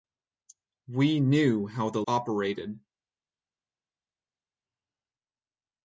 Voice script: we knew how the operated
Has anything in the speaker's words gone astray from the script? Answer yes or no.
no